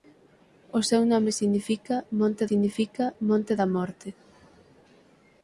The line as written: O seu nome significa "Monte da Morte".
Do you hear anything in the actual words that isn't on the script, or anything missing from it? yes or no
yes